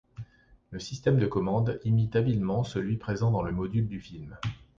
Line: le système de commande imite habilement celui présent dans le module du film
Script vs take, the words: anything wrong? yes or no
no